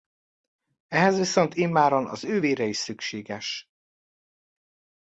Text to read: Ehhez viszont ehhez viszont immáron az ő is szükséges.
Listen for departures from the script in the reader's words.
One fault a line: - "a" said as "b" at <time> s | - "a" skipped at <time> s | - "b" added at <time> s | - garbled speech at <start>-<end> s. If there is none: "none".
- "ehhez viszont" skipped at 1.6 s
- "vére" added at 2.4 s